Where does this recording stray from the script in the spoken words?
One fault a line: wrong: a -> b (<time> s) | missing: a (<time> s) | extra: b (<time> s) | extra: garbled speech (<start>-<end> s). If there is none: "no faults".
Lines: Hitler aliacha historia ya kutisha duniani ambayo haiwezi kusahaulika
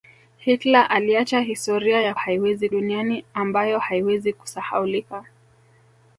wrong: kutisha -> haiwezi (2.1 s)